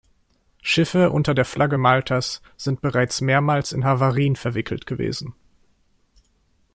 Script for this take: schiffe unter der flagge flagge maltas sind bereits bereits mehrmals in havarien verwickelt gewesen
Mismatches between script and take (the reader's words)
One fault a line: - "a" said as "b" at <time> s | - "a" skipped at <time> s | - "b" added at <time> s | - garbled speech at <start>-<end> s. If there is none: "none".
- "flagge" skipped at 1.8 s
- "bereits" skipped at 3.2 s